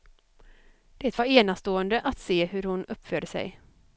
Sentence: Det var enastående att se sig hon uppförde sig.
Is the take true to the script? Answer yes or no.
no